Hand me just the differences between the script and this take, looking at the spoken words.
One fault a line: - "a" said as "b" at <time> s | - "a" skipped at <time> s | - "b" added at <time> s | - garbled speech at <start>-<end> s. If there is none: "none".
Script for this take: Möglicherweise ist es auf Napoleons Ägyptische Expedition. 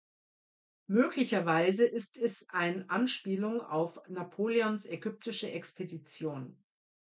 - "ein Anspielung" added at 2.5 s